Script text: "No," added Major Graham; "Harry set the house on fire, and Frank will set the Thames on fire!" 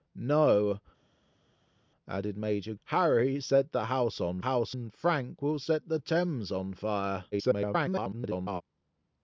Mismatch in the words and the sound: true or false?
true